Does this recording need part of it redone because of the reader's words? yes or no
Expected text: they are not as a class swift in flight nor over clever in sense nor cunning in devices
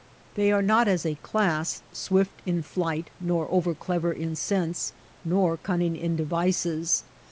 no